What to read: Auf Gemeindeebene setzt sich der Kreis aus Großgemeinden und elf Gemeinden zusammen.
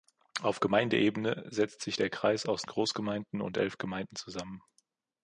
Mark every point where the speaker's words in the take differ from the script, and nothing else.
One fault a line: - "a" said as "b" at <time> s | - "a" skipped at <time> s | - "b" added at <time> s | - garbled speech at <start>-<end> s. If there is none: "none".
none